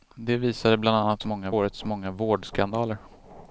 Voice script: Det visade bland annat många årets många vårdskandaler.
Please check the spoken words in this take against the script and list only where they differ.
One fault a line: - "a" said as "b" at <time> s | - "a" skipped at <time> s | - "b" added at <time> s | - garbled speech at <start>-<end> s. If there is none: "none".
none